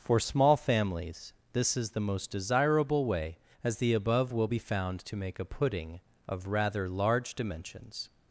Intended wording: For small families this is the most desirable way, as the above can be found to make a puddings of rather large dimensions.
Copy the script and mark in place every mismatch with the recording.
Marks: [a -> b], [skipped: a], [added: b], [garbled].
For small families this is the most desirable way, as the above [can -> will] be found to make a [puddings -> pudding] of rather large dimensions.